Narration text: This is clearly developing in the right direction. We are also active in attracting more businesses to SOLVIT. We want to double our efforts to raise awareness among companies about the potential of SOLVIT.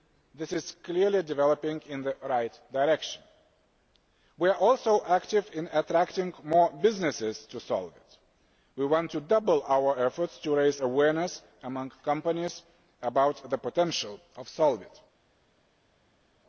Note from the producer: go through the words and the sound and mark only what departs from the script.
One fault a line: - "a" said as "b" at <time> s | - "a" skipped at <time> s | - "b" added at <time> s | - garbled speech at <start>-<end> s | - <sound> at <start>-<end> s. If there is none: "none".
none